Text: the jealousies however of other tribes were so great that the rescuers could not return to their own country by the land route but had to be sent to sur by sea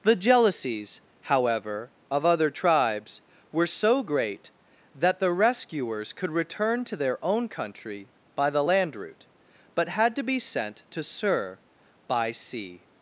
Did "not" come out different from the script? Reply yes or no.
yes